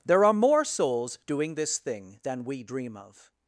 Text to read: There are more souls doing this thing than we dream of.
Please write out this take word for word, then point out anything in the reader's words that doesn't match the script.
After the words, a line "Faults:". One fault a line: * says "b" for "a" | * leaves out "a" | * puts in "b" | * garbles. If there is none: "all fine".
There are more souls doing this thing than we dream of.
Faults:
all fine